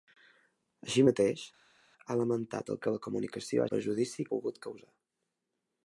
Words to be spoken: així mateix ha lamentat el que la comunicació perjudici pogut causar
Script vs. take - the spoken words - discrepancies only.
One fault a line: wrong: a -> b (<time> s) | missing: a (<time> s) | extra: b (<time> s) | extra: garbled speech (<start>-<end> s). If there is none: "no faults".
no faults